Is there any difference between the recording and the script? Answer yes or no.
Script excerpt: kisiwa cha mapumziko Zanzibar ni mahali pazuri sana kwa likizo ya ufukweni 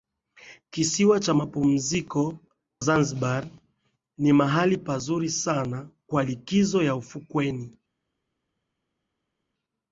no